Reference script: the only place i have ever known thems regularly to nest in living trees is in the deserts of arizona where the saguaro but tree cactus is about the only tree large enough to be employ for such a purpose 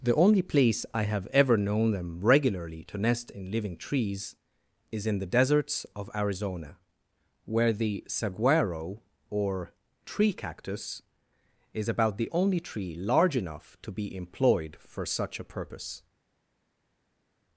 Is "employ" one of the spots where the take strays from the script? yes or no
yes